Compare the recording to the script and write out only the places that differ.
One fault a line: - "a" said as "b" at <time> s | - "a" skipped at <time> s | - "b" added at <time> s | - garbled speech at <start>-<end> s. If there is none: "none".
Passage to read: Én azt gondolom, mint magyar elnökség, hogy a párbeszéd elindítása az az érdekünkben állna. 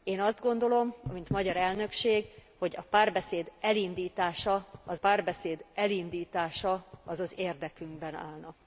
- "párbeszéd elindítása az" added at 5.0 s